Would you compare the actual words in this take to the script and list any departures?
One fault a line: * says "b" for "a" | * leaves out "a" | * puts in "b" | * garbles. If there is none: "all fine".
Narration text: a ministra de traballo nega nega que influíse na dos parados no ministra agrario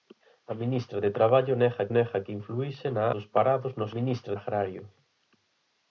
all fine